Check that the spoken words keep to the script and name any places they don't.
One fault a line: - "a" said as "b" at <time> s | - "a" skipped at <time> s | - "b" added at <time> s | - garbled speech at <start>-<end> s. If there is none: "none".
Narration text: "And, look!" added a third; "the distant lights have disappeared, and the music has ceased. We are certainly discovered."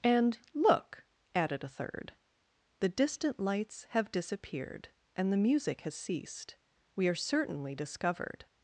none